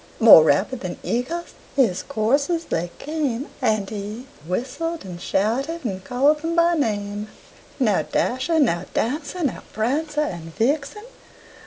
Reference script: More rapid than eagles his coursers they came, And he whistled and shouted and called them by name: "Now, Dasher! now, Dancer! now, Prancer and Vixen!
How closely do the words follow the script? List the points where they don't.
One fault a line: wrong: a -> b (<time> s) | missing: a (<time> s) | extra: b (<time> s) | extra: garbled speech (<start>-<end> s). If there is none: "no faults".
no faults